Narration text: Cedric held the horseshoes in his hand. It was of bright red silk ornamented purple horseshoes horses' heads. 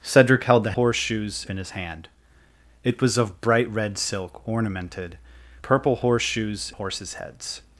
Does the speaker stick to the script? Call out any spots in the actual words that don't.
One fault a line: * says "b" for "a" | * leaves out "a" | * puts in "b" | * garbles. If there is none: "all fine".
all fine